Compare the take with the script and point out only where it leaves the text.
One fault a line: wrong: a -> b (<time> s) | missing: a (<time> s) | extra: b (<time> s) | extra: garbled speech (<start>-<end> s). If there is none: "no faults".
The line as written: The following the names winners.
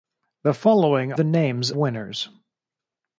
no faults